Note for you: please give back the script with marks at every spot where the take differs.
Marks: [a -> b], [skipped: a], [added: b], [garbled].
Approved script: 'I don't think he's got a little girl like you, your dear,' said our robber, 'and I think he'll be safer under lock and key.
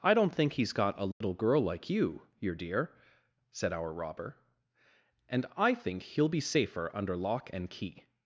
'I don't think he's got a little girl like you, your dear,' said our robber, 'and I think he'll be safer under lock and key.